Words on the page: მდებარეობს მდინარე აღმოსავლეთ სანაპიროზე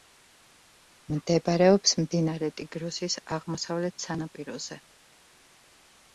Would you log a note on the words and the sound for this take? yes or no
yes